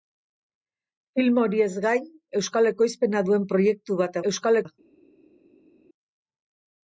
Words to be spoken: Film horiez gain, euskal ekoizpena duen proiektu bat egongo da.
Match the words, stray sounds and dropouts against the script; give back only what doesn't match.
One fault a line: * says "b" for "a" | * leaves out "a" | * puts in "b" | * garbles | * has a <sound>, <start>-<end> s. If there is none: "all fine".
* says "euskal" for "egongo"